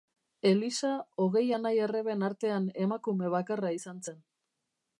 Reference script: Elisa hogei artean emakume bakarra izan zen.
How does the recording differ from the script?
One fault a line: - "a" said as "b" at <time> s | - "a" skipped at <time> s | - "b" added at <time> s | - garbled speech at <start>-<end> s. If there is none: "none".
- "anai arreben" added at 1.6 s